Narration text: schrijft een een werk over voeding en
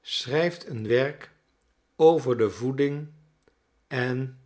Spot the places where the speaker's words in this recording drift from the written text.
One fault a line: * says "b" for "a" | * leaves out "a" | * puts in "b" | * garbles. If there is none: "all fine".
* leaves out "een"
* puts in "de"